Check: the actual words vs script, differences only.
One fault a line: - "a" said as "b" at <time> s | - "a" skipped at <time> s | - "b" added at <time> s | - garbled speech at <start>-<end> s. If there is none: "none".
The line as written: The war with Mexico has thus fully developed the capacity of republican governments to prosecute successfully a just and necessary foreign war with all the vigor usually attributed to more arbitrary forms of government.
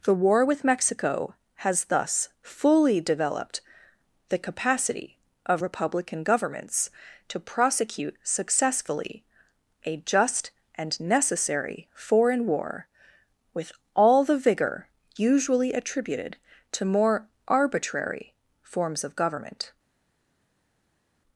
none